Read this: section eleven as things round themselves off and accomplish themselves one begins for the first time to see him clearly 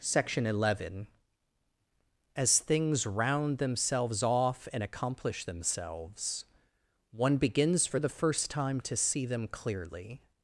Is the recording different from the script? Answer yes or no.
yes